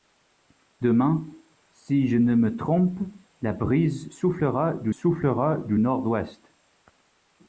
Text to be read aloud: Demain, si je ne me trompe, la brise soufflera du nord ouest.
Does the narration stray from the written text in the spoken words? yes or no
yes